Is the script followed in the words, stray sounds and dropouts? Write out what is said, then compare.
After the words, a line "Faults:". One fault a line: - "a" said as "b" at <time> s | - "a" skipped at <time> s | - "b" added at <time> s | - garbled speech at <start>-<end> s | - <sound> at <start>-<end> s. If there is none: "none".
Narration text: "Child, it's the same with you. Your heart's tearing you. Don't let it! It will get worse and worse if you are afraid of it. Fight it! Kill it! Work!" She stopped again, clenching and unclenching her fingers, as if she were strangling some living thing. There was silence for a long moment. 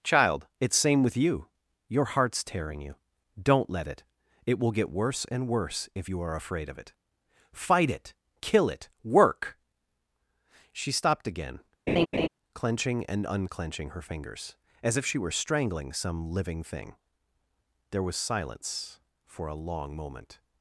"Child, it's same with you. Your heart's tearing you. Don't let it! It will get worse and worse if you are afraid of it. Fight it! Kill it! Work!" She stopped again, clenching and unclenching her fingers, as if she were strangling some living thing. There was silence for a long moment.
Faults:
- "the" skipped at 0.8 s
- laugh at 11.9-12.3 s